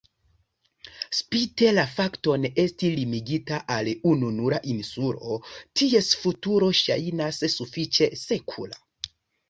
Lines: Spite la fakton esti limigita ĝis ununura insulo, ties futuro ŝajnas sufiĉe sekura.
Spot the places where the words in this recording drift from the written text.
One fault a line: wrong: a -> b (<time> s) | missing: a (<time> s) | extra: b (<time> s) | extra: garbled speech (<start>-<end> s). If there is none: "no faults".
wrong: ĝis -> al (3.8 s)